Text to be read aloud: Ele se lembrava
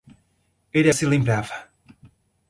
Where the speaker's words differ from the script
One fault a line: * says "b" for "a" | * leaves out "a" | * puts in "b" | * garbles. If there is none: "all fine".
all fine